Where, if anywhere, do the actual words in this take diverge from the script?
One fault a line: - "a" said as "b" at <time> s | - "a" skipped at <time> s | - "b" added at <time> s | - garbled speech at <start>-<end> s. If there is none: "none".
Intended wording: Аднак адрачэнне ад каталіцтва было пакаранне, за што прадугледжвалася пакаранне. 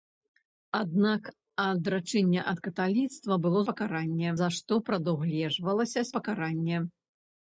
none